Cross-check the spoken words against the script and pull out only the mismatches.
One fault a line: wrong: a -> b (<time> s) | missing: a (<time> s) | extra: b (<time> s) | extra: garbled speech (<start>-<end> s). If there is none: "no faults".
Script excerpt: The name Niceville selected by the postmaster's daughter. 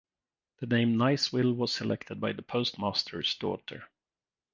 extra: was (1.6 s)